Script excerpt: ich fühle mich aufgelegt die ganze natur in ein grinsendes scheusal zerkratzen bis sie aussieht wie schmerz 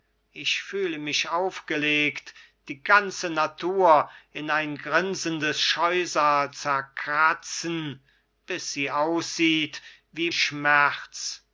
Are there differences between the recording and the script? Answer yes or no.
no